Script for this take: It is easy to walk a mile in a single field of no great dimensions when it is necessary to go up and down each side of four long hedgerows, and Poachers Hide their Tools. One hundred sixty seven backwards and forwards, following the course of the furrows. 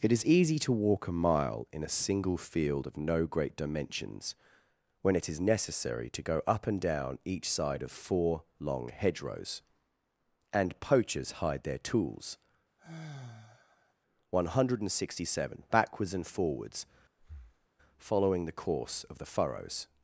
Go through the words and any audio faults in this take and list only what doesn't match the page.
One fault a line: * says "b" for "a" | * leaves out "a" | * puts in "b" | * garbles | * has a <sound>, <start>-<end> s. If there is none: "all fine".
* has a sigh, 12.8-13.9 s
* has a breath, 17.2-17.7 s